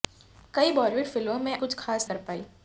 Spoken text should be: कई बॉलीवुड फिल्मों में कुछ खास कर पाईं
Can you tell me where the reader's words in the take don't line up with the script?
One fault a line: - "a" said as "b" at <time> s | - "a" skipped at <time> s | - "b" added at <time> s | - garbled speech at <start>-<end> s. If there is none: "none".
none